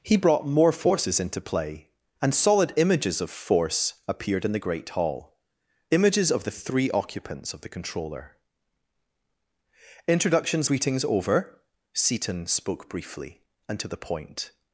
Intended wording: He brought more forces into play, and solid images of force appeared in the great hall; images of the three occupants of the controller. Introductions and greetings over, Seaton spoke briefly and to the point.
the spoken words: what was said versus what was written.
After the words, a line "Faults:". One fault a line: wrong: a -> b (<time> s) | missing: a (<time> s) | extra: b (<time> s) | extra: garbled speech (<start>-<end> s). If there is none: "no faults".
He brought more forces into play, and solid images of force appeared in the great hall; images of the three occupants of the controller. Introductions greetings over, Seaton spoke briefly and to the point.
Faults:
missing: and (10.7 s)